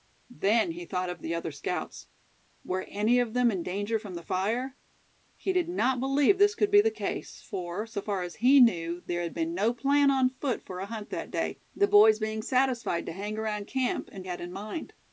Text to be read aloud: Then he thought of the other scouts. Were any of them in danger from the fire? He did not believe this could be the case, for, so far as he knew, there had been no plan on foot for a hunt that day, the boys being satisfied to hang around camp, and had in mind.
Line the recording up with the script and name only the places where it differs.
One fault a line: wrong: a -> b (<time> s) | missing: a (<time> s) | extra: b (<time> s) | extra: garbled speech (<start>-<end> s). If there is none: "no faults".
no faults